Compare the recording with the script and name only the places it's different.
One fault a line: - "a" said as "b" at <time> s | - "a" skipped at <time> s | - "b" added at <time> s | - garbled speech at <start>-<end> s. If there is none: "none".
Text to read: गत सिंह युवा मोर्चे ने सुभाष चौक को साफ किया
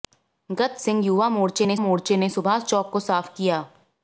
- "मोर्चे ने" added at 1.8 s